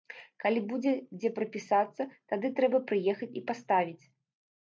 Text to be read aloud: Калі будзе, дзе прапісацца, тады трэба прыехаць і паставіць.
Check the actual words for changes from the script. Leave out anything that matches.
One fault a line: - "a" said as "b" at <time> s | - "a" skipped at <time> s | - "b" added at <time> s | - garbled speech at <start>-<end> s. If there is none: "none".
none